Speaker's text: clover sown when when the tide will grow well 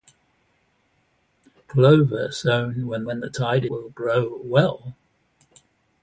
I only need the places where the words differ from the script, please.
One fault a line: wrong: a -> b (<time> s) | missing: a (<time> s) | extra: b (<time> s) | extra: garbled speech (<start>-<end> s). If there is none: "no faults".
no faults